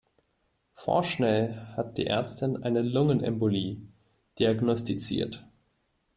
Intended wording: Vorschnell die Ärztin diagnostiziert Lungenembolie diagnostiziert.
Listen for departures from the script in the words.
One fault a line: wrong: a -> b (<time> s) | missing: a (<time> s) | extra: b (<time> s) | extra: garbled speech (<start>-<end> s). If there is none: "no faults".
extra: hat (1.8 s)
wrong: diagnostiziert -> eine (2.6 s)